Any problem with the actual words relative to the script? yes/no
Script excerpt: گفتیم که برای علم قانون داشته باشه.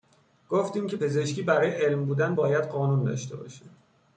yes